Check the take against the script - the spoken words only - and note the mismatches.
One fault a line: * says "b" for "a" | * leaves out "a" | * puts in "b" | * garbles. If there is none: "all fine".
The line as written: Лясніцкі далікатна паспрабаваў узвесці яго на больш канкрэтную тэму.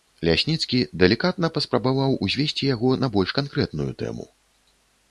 all fine